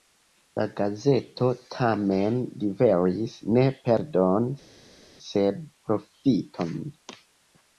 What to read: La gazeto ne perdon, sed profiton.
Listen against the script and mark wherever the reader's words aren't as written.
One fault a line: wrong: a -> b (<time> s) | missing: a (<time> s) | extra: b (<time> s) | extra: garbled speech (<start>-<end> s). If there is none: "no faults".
extra: tamen liveris (1.8 s)